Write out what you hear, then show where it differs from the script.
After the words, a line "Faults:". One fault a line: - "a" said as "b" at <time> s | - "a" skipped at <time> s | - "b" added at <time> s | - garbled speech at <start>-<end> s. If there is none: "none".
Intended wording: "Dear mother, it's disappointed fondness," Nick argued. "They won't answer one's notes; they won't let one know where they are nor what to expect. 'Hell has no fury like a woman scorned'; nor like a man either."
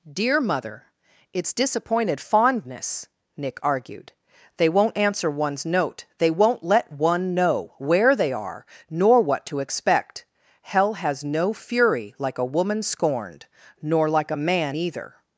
"Dear mother, it's disappointed fondness," Nick argued. "They won't answer one's note; they won't let one know where they are nor what to expect. 'Hell has no fury like a woman scorned'; nor like a man either."
Faults:
- "notes" said as "note" at 5.7 s